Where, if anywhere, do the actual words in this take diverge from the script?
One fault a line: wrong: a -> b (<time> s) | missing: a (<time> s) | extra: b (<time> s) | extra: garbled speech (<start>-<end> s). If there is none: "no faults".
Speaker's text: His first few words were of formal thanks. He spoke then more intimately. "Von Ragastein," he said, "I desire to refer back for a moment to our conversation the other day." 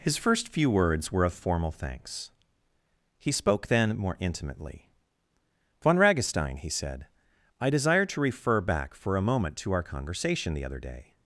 no faults